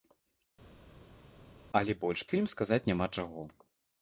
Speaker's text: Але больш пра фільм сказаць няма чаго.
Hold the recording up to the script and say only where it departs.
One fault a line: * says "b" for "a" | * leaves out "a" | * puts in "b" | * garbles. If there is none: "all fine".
* leaves out "пра"